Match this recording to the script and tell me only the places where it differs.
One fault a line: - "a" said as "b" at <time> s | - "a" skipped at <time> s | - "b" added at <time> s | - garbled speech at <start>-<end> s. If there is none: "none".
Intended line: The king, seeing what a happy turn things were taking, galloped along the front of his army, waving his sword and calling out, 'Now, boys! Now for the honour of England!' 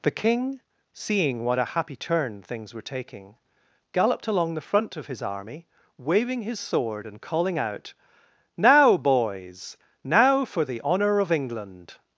none